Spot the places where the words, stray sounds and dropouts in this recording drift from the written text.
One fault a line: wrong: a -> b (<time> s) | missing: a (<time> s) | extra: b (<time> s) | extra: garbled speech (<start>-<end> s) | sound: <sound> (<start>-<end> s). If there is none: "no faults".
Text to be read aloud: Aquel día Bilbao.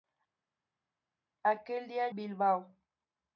no faults